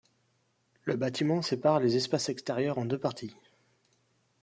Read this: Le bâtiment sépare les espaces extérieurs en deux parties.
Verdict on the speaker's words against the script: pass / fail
pass